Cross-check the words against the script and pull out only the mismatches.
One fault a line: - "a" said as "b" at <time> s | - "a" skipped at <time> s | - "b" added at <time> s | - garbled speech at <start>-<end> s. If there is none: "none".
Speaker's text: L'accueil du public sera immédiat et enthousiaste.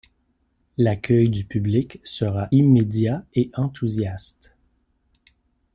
none